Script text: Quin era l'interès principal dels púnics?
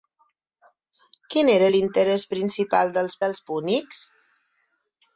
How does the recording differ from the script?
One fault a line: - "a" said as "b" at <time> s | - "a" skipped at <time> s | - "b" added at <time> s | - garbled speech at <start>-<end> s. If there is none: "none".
- "dels" added at 3.3 s